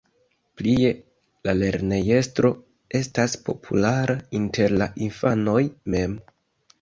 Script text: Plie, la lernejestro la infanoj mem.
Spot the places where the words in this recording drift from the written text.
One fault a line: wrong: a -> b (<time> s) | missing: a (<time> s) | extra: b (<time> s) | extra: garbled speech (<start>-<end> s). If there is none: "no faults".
extra: estas populara inter (3.0 s)